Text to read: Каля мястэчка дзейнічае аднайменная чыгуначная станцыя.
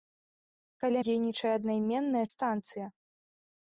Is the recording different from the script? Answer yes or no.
yes